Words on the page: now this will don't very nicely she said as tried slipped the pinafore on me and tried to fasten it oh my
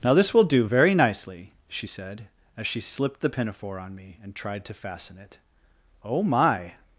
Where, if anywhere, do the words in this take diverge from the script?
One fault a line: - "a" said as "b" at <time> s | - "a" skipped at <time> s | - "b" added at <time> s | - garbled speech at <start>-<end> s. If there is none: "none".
- "don't" said as "do" at 0.4 s
- "tried" said as "she" at 2.7 s